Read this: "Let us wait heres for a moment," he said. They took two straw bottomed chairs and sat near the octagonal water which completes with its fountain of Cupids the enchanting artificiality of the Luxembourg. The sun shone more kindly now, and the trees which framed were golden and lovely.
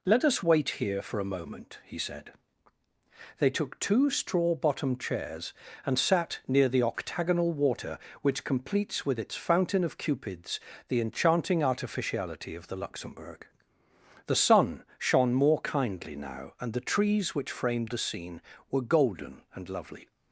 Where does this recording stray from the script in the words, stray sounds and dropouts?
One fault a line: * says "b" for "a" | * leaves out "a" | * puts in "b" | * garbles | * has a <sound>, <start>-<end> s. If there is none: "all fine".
* says "here" for "heres"
* puts in "the scene"